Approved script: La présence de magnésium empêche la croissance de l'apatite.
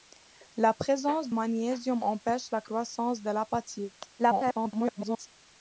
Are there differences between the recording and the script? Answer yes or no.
yes